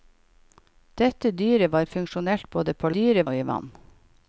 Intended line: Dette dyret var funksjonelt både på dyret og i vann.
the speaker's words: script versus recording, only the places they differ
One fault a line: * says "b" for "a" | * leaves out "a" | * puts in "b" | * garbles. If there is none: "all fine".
all fine